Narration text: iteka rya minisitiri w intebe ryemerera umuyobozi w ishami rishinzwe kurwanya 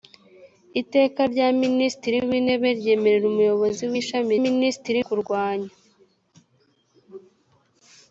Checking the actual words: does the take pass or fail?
fail